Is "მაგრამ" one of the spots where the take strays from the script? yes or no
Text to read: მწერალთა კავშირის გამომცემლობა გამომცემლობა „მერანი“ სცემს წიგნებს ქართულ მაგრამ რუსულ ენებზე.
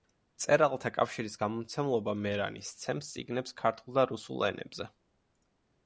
yes